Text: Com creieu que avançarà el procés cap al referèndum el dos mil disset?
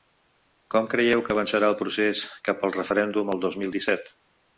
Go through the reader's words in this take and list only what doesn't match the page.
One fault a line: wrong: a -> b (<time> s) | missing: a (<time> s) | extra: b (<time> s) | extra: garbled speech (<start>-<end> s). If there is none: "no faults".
no faults